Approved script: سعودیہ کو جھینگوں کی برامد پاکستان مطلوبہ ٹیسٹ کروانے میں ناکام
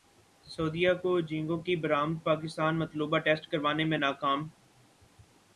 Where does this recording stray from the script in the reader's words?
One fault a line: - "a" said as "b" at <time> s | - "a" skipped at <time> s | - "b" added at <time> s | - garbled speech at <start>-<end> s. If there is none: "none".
none